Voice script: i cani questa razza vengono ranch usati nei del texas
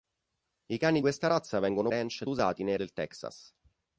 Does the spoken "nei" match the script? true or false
true